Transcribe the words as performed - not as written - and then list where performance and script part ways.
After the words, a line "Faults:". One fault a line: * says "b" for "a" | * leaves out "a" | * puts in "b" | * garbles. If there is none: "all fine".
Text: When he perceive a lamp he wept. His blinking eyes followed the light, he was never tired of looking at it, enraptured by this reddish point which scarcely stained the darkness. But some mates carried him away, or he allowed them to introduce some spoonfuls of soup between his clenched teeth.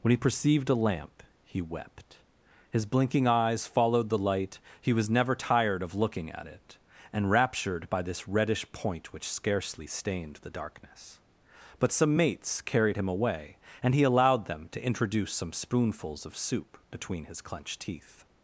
When he perceived a lamp he wept. His blinking eyes followed the light, he was never tired of looking at it, enraptured by this reddish point which scarcely stained the darkness. But some mates carried him away, and he allowed them to introduce some spoonfuls of soup between his clenched teeth.
Faults:
* says "perceived" for "perceive"
* says "and" for "or"